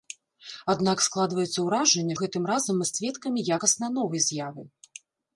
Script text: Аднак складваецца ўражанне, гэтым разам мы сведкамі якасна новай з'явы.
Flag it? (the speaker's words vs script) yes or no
no